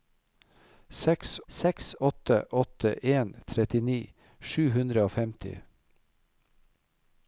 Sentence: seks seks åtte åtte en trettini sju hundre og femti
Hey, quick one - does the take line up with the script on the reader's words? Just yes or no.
yes